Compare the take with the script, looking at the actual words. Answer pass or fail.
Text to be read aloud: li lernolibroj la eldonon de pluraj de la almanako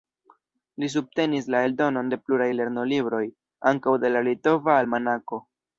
fail